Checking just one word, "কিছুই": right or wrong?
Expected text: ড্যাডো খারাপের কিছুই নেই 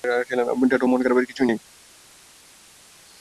right